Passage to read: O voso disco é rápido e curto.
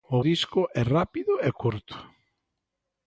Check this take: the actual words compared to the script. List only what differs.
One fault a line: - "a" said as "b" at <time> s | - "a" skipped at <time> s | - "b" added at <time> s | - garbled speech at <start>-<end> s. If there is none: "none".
- "voso" skipped at 0.2 s